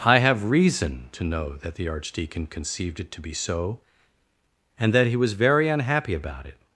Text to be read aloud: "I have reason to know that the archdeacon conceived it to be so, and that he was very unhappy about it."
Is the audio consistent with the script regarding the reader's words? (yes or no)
yes